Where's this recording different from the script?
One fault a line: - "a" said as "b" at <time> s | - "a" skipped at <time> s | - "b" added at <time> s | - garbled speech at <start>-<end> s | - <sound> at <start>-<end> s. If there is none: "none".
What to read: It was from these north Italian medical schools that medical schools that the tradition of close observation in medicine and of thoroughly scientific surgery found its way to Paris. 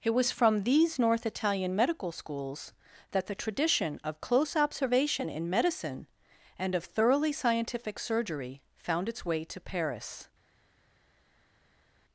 - "medical schools that" skipped at 3.3 s